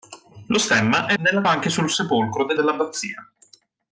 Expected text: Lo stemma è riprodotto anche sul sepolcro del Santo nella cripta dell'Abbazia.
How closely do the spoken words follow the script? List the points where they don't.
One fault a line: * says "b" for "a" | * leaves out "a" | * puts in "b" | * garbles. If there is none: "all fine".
* says "nella" for "riprodotto"
* leaves out "Santo nella cripta"